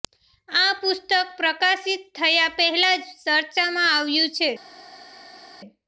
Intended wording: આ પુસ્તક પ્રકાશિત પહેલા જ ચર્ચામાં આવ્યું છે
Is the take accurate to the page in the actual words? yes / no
no